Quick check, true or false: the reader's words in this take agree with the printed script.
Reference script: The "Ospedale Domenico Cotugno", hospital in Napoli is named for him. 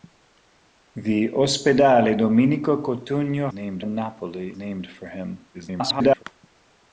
false